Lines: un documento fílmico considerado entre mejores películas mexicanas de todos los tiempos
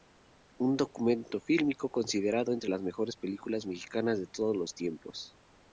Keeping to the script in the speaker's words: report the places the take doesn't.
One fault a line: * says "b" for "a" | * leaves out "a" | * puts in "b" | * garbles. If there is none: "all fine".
* puts in "las"